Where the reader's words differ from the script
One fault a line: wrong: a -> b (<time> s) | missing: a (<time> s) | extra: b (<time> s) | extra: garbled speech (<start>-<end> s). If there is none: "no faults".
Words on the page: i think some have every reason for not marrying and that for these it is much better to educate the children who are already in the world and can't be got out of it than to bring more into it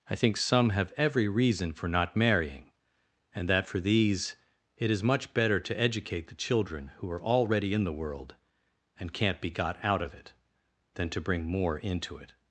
no faults